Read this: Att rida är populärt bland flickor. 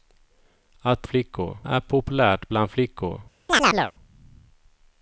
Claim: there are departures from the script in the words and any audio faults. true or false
true